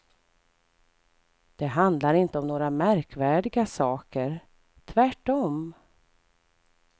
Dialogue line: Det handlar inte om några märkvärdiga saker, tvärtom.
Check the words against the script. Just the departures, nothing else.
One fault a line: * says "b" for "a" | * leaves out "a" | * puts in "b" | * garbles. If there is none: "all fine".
all fine